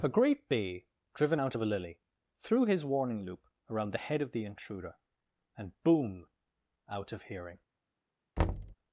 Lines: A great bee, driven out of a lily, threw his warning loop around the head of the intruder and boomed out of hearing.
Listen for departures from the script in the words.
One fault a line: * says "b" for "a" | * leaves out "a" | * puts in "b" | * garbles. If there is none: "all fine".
* says "boom" for "boomed"